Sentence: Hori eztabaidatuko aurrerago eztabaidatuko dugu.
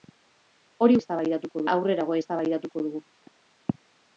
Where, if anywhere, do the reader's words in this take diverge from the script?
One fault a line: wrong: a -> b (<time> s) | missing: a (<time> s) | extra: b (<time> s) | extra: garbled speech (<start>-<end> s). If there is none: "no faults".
no faults